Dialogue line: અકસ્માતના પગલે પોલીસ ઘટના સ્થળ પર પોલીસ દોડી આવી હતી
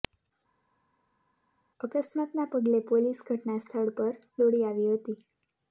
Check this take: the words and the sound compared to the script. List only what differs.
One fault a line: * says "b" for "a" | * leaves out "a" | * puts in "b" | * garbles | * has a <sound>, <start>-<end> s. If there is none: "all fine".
* leaves out "પોલીસ"